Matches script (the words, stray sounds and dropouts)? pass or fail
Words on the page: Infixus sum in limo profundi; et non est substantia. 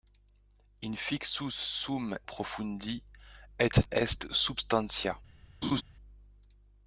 fail